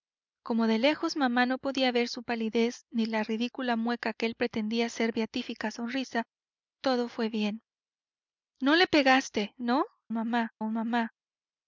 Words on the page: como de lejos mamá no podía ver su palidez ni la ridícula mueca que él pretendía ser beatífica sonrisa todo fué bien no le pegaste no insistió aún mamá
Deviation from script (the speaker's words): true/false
true